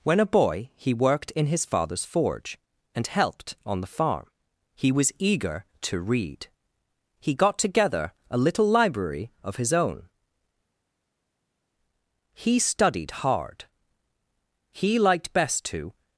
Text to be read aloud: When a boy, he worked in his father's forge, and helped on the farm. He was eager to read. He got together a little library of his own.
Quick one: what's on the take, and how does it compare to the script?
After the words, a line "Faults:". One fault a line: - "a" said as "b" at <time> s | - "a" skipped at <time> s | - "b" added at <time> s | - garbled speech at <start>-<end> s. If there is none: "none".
When a boy, he worked in his father's forge, and helped on the farm. He was eager to read. He got together a little library of his own. He studied hard. He liked best to
Faults:
- "He studied hard He liked best to" added at 12.3 s